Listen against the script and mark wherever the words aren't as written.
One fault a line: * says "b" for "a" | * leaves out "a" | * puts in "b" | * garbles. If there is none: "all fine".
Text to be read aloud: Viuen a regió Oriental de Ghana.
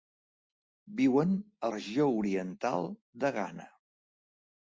all fine